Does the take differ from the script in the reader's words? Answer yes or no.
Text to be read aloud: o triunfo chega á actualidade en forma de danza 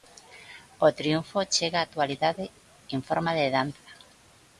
no